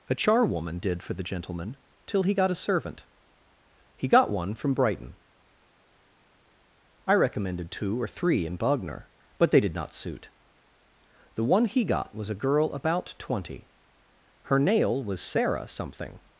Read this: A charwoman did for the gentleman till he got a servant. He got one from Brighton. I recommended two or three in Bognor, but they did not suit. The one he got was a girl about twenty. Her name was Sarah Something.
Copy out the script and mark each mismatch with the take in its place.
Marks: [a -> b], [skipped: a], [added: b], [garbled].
A charwoman did for the gentleman till he got a servant. He got one from Brighton. I recommended two or three in Bognor, but they did not suit. The one he got was a girl about twenty. Her [name -> nail] was Sarah Something.